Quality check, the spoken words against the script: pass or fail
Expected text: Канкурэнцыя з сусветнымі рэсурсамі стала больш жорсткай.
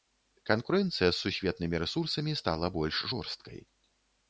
pass